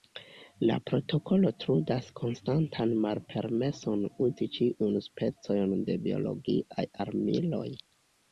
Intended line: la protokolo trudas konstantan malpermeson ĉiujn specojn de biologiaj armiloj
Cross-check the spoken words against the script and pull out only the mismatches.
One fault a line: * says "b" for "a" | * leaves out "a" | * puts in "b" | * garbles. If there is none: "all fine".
* puts in "uzi"